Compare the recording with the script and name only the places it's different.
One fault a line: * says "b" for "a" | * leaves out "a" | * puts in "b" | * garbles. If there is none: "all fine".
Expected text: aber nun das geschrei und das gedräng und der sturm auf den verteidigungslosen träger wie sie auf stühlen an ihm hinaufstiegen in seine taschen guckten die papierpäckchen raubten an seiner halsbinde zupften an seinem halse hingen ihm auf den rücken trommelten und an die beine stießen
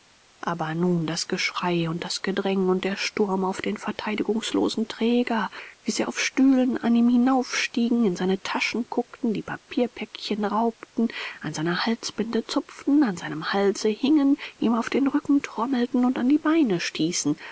all fine